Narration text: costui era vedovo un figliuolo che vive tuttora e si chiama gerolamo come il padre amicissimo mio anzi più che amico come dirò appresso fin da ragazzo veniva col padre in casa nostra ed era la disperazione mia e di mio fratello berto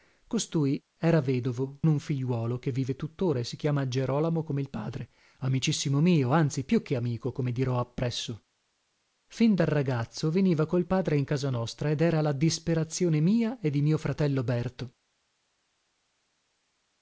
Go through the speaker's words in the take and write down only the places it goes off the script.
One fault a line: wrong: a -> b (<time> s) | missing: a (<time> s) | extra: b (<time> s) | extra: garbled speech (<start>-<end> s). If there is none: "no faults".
no faults